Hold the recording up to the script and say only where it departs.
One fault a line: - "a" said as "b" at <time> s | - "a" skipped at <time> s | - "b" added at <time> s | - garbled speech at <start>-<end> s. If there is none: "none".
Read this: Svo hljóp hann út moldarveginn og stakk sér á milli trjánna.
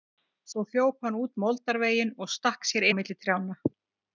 none